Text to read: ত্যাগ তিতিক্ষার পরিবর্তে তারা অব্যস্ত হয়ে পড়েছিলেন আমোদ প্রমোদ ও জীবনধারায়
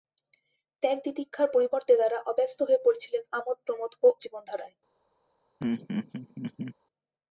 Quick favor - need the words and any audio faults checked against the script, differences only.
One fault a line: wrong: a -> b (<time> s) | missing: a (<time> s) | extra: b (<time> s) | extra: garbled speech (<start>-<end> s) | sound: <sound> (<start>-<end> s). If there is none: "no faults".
sound: laugh (5.6-6.7 s)